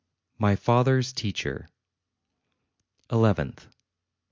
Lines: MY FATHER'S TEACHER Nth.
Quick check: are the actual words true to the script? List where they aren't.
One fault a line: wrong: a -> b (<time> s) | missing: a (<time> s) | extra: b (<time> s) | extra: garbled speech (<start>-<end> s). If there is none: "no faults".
no faults